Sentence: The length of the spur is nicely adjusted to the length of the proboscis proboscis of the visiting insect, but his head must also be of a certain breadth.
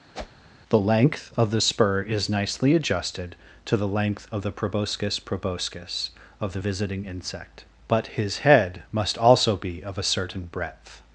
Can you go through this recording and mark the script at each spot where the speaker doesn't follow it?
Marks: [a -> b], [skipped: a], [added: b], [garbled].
The length of the spur is nicely adjusted to the length of the proboscis proboscis of the visiting insect, but his head must also be of a certain breadth.